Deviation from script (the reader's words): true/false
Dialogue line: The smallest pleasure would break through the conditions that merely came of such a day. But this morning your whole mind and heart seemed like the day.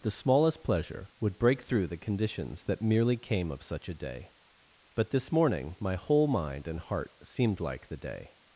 true